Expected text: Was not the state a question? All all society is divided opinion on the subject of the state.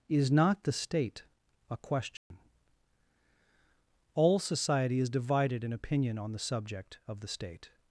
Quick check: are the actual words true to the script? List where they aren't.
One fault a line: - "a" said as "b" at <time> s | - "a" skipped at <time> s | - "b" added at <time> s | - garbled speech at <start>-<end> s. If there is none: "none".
- "Was" said as "Is" at 0.1 s
- "all" skipped at 4.4 s
- "in" added at 5.6 s